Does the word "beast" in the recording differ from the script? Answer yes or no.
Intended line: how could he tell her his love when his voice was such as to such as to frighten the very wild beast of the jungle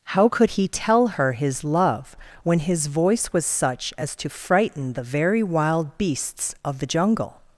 yes